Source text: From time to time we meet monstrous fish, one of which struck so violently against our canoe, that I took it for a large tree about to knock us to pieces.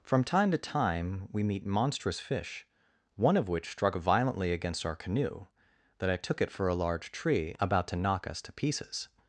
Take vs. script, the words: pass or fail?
fail